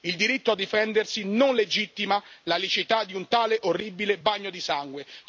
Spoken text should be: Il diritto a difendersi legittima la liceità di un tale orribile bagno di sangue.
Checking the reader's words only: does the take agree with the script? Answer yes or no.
no